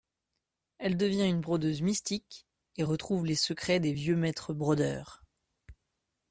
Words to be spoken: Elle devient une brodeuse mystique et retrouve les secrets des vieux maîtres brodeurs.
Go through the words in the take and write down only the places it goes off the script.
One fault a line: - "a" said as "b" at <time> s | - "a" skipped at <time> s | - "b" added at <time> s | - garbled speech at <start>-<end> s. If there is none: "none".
none